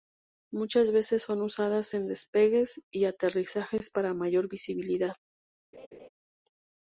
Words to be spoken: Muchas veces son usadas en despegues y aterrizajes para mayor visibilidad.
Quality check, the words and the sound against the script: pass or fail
fail